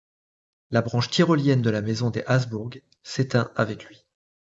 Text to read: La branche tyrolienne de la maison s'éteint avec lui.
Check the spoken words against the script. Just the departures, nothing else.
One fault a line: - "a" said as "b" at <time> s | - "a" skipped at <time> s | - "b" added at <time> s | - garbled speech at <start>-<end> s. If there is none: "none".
- "des Habsbourg" added at 2.1 s